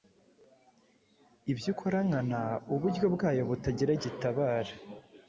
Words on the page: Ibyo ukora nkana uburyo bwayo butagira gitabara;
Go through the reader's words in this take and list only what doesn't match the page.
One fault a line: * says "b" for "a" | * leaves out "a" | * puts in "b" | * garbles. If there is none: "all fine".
all fine